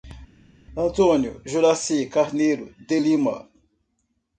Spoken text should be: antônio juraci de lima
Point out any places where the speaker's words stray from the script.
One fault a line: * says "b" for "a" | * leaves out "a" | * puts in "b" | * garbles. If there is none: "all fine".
* puts in "carneiro"